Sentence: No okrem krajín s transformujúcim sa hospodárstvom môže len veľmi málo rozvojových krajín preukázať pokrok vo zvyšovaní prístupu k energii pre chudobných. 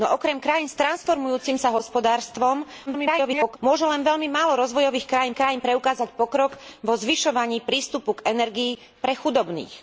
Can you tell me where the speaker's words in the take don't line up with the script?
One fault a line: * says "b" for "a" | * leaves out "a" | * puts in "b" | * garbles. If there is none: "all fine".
* garbles
* puts in "krajín"